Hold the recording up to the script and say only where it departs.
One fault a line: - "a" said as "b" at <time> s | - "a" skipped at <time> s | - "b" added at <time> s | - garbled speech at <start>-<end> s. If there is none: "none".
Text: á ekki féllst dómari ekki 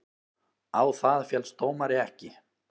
- "ekki" said as "það" at 1.0 s